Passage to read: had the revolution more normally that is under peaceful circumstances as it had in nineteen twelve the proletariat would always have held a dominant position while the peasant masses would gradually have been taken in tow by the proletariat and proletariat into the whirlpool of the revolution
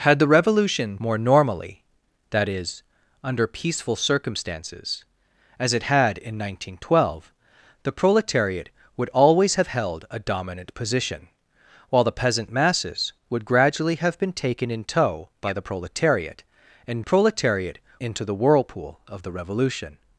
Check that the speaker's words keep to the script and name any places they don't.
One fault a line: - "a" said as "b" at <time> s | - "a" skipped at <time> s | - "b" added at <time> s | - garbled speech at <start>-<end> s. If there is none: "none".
none